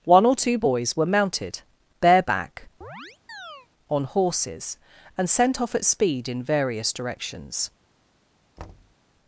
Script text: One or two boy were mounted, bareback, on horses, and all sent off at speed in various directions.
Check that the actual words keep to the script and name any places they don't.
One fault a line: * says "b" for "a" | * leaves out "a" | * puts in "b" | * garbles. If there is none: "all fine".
* says "boys" for "boy"
* leaves out "all"